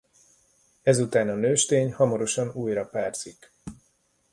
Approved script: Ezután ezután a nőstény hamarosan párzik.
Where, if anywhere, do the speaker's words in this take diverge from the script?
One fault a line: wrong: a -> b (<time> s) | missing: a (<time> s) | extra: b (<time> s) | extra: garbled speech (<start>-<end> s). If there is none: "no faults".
missing: ezután (1.3 s)
extra: újra (2.5 s)